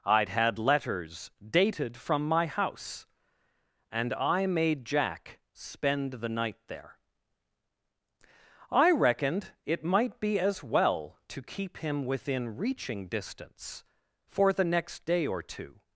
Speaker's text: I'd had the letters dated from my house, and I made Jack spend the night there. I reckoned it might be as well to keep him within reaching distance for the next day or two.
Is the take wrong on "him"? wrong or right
right